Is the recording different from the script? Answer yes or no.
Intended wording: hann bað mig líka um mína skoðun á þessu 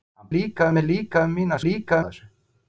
yes